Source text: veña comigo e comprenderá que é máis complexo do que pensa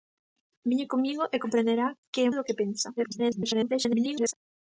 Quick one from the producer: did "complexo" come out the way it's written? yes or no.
no